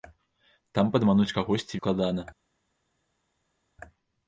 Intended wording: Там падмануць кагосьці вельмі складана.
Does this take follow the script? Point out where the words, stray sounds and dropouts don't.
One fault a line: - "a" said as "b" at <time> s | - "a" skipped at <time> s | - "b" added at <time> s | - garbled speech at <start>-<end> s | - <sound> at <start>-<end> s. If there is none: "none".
- "вельмі" skipped at 1.8 s